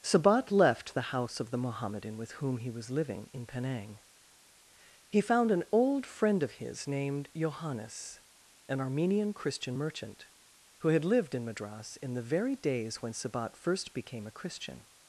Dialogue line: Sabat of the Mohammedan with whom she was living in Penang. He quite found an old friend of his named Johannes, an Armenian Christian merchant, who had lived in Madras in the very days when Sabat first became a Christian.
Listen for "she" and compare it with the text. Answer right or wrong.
wrong